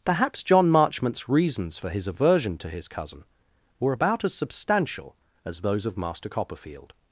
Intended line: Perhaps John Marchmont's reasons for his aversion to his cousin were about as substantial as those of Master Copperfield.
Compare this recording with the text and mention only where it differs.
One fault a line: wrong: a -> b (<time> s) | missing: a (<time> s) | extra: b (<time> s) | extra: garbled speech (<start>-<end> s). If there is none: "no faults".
no faults